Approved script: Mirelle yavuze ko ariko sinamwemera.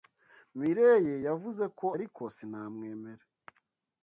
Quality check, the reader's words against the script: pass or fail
pass